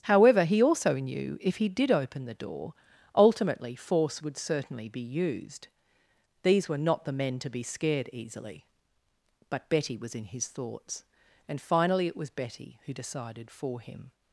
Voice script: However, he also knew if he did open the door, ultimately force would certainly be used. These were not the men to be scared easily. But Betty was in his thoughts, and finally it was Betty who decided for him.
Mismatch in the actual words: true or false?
false